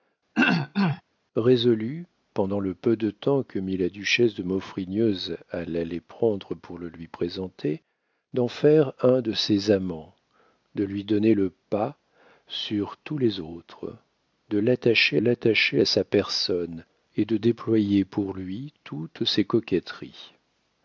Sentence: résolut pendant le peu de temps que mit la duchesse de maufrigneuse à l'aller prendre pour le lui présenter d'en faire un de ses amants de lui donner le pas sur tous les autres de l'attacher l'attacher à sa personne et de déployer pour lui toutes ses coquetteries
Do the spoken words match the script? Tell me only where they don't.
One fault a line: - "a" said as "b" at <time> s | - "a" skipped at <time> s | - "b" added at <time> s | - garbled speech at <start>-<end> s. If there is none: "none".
none